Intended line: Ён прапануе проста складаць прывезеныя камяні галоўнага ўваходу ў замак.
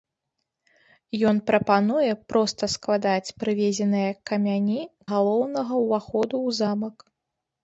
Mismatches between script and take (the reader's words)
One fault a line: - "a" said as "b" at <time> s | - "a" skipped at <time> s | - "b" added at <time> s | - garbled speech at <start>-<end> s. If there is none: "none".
none